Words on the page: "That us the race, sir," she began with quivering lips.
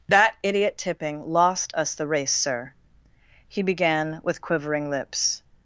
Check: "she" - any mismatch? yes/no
yes